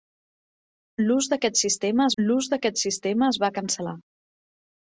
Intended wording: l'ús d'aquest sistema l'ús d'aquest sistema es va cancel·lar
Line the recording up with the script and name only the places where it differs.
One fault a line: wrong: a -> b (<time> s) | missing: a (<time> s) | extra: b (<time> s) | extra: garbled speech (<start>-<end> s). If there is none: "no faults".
no faults